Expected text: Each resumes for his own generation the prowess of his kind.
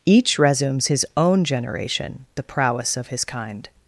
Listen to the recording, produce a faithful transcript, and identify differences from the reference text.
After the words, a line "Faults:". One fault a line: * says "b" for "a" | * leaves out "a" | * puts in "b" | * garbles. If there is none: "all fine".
Each resumes his own generation the prowess of his kind.
Faults:
* leaves out "for"